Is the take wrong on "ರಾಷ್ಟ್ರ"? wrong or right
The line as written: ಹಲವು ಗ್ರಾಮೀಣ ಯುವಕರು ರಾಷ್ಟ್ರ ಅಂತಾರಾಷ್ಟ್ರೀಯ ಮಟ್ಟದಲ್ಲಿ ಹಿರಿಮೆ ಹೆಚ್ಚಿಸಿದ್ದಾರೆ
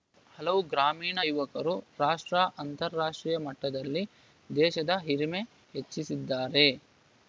right